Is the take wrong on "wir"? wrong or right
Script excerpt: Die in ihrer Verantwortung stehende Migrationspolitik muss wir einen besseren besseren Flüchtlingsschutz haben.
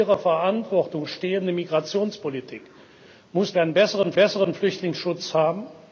right